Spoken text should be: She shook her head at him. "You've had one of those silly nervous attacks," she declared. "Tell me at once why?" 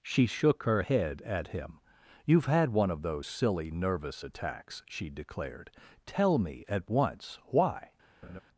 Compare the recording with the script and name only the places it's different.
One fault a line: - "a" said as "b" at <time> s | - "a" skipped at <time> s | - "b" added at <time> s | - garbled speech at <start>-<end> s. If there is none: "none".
none